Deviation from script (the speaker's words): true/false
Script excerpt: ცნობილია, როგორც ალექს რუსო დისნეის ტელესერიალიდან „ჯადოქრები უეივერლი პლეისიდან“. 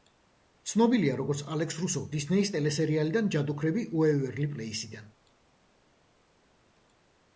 false